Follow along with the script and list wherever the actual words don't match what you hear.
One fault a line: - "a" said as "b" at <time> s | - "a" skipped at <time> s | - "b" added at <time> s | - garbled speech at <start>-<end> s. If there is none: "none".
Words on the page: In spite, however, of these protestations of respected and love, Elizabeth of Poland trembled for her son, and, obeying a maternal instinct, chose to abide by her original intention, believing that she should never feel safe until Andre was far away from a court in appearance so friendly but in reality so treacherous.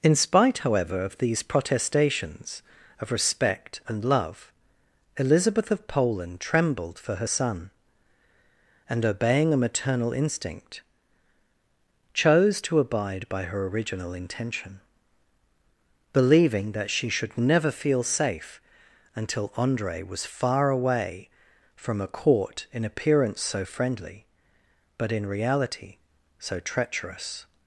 - "respected" said as "respect" at 3.1 s